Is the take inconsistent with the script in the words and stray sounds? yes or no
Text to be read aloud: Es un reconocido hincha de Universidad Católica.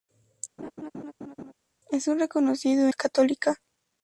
yes